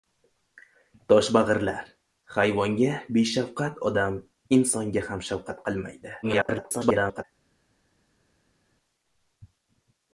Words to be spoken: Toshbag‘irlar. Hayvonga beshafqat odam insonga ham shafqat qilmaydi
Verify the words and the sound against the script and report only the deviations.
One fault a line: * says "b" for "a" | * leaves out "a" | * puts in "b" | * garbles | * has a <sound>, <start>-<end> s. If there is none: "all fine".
* garbles